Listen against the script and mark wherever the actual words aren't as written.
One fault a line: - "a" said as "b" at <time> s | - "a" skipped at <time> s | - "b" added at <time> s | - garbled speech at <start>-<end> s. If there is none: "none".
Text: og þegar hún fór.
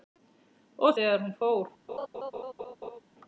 none